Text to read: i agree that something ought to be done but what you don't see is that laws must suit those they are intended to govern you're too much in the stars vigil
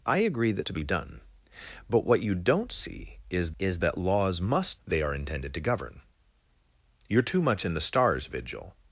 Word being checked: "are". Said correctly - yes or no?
yes